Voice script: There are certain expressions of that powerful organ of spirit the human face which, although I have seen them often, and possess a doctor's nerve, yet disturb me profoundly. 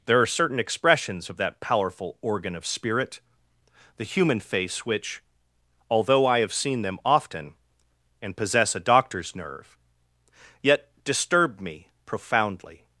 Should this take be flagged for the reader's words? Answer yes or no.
no